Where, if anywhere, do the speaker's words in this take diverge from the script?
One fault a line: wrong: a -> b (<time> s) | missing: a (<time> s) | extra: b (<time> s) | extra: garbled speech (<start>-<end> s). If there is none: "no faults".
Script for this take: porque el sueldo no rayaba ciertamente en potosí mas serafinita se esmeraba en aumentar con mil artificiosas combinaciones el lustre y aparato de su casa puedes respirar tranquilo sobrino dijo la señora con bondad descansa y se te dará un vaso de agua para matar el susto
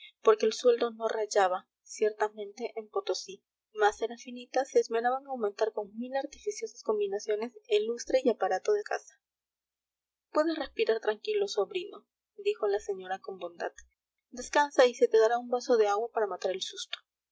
missing: su (8.8 s)